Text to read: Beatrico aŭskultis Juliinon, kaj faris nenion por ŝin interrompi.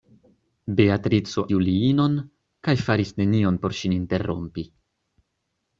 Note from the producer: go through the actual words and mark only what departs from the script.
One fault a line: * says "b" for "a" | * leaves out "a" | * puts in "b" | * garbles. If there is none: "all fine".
* leaves out "aŭskultis"